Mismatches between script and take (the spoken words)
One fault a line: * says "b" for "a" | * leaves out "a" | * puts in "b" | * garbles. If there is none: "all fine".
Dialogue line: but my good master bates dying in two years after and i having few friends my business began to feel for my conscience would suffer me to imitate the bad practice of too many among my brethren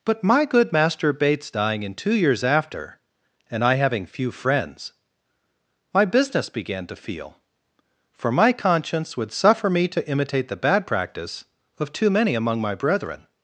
all fine